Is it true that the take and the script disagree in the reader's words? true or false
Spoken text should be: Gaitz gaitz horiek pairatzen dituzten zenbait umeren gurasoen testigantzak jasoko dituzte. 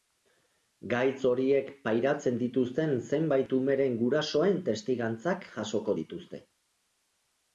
true